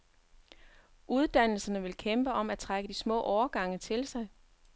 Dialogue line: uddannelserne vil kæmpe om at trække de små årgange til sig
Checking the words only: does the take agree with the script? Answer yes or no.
yes